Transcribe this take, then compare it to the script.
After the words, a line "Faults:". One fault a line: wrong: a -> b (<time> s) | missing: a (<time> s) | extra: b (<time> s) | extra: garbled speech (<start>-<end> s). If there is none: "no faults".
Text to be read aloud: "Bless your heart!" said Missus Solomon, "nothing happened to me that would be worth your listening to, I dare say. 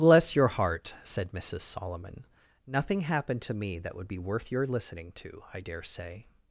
"Bless your heart!" said Missus Solomon, "nothing happened to me that would be worth your listening to, I dare say.
Faults:
no faults